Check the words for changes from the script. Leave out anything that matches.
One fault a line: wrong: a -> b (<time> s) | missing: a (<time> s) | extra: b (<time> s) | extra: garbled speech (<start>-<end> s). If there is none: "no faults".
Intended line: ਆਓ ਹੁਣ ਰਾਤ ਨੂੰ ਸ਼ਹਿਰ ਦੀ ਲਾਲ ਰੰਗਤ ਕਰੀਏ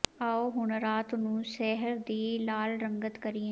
no faults